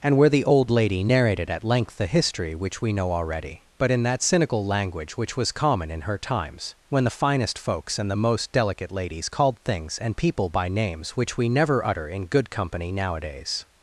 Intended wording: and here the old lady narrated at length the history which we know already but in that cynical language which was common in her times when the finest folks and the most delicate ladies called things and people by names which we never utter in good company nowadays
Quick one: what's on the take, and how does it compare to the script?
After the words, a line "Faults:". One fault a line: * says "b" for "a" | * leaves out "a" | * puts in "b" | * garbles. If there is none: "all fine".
and where the old lady narrated at length the history which we know already but in that cynical language which was common in her times when the finest folks and the most delicate ladies called things and people by names which we never utter in good company nowadays
Faults:
* says "where" for "here"